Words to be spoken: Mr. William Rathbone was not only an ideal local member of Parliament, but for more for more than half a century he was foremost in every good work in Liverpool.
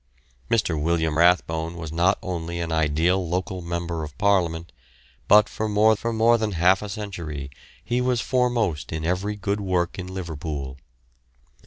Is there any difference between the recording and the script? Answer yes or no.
no